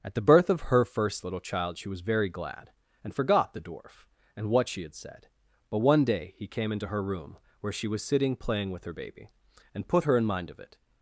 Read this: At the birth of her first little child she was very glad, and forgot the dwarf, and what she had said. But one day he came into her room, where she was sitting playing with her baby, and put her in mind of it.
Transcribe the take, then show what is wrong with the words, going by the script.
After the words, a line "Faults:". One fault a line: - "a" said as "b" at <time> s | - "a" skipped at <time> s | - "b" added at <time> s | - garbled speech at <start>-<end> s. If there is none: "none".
At the birth of her first little child she was very glad, and forgot the dwarf, and what she had said. But one day he came into her room, where she was sitting playing with her baby, and put her in mind of it.
Faults:
none